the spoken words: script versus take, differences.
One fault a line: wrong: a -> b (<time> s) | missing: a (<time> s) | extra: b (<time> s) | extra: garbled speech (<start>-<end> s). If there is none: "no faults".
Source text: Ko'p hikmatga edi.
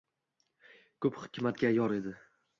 extra: yor (1.8 s)